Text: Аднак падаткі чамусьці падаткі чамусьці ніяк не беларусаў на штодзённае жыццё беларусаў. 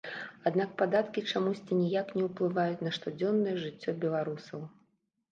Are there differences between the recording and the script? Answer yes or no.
yes